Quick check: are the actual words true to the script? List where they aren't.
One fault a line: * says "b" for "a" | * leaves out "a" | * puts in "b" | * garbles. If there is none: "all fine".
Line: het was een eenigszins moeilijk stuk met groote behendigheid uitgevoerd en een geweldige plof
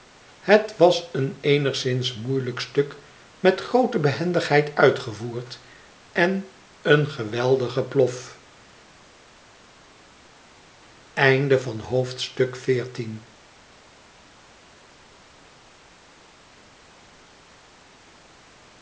all fine